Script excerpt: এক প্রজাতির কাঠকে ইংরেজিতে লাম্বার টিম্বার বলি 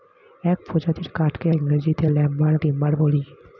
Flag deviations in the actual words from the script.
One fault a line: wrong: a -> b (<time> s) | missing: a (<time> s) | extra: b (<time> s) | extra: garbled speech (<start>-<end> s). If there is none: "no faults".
no faults